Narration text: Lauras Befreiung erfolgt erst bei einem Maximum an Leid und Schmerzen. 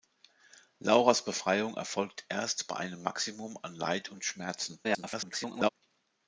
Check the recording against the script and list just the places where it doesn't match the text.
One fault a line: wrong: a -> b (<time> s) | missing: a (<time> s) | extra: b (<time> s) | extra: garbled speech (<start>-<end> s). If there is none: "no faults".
extra: garbled speech (4.8-5.7 s)